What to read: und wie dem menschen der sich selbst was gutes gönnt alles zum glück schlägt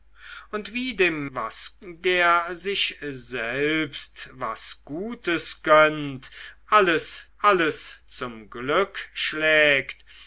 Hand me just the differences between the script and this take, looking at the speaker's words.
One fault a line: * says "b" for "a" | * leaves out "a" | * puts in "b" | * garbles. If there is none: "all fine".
* says "was" for "menschen"
* puts in "alles"